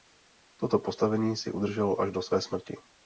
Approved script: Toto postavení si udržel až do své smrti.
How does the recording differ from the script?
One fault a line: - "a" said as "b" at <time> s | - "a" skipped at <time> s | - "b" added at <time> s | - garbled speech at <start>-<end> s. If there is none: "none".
none